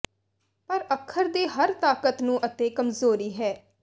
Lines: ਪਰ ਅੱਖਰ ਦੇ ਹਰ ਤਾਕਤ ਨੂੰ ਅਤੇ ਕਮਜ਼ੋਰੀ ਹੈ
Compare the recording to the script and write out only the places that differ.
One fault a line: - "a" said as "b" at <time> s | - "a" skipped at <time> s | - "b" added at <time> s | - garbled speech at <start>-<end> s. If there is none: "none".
none